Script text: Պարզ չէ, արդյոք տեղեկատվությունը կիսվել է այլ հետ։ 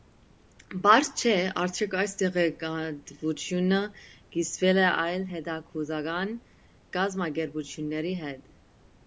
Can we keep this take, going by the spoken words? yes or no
no